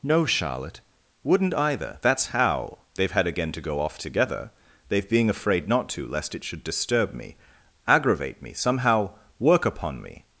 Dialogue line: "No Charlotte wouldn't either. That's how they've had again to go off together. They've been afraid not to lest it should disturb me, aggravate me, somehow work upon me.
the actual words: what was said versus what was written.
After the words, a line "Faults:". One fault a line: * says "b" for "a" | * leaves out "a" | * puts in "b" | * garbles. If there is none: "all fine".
"No Charlotte wouldn't either. That's how they've had again to go off together. They've being afraid not to lest it should disturb me, aggravate me, somehow work upon me.
Faults:
* says "being" for "been"